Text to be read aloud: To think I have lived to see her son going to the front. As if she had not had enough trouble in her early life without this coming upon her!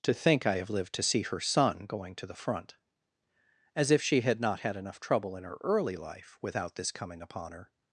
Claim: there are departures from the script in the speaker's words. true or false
false